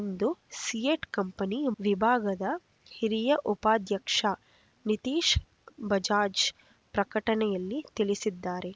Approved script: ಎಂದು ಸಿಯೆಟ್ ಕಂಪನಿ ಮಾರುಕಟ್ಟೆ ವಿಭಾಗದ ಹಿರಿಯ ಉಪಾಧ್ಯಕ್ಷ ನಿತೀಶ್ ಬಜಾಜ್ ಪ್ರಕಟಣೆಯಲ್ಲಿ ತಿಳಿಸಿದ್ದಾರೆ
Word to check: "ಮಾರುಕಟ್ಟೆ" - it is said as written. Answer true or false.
false